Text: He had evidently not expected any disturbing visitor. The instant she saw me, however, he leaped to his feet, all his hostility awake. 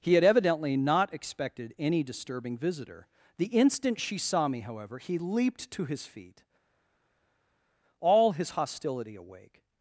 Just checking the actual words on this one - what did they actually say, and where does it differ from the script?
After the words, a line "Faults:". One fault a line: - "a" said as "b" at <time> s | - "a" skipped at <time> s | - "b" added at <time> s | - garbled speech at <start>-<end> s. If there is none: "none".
He had evidently not expected any disturbing visitor. The instant she saw me, however, he leaped to his feet, all his hostility awake.
Faults:
none